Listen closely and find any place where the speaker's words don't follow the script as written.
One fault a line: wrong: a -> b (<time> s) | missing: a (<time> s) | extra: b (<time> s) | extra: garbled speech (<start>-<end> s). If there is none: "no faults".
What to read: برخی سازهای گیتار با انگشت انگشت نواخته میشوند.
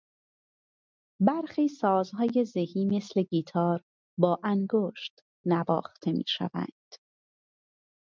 extra: زهی مثل (2.5 s)
missing: انگشت (5.2 s)